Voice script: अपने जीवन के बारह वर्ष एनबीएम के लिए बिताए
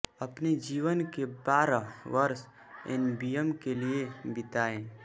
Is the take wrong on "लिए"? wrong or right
right